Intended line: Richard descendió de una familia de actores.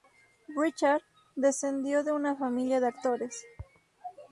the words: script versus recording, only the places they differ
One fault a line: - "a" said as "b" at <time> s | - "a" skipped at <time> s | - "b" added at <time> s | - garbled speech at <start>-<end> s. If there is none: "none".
none